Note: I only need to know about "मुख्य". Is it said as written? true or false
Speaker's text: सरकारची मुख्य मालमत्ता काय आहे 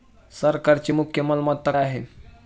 true